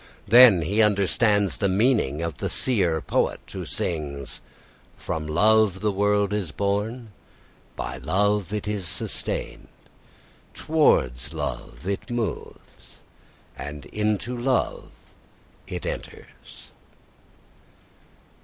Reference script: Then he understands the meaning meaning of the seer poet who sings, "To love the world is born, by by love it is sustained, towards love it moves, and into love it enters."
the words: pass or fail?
fail